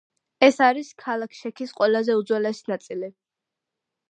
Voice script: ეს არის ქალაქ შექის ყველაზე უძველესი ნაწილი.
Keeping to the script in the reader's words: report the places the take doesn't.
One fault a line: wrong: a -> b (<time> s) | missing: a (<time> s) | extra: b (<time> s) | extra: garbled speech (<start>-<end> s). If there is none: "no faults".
no faults